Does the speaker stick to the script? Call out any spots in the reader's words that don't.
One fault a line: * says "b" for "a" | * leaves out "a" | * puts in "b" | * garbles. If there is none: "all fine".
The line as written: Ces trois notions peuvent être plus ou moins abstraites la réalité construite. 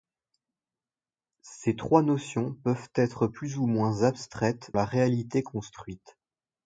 all fine